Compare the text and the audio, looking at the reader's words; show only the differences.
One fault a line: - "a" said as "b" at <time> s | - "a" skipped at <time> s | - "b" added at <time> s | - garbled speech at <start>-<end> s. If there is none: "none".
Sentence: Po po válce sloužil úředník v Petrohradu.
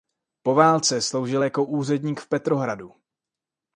- "po" skipped at 0.6 s
- "jako" added at 1.4 s